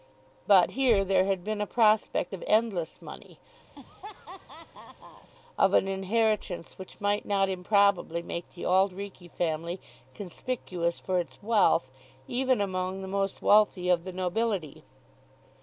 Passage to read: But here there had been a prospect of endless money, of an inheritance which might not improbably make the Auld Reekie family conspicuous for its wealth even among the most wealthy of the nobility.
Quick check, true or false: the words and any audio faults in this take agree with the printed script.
false